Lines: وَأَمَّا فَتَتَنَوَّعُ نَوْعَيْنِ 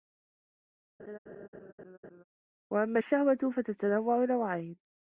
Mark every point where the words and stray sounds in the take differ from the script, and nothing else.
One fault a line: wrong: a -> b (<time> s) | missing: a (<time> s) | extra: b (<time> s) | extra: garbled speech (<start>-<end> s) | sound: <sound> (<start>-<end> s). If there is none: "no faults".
sound: laugh (1.0-2.2 s)
extra: الشَّهْوَةُ (3.0 s)